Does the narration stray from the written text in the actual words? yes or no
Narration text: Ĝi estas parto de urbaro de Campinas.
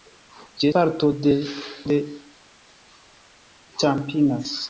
yes